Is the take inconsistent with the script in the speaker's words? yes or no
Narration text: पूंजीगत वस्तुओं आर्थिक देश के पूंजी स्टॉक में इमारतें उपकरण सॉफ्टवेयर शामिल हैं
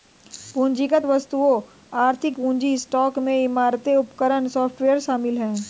yes